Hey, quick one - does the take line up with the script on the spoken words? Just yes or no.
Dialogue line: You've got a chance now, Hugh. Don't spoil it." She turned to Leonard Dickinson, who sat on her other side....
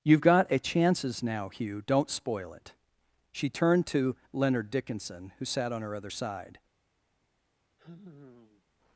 no